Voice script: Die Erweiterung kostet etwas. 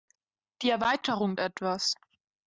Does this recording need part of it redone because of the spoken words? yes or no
yes